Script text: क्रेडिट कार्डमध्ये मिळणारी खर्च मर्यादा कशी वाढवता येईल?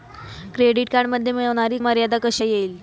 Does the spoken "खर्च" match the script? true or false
false